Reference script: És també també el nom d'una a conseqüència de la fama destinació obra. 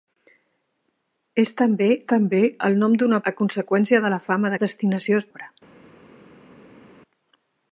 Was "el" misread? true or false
false